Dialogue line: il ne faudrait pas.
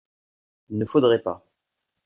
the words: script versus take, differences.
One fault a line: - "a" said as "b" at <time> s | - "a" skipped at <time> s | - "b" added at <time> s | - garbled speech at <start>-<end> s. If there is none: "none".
none